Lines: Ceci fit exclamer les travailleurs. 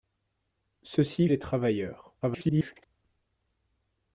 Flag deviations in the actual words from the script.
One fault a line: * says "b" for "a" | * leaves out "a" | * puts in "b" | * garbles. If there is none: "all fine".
* leaves out "fit exclamer"
* garbles